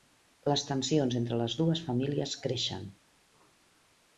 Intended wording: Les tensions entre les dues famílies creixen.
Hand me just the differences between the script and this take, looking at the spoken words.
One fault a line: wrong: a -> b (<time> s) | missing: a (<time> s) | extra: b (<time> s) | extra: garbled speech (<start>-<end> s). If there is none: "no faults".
no faults